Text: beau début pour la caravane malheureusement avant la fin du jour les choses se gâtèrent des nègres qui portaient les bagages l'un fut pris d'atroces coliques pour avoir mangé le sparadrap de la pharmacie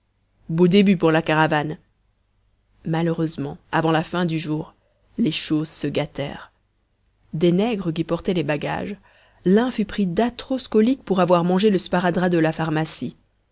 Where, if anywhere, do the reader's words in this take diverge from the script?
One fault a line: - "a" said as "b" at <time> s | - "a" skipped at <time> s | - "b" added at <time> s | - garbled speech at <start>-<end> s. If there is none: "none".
none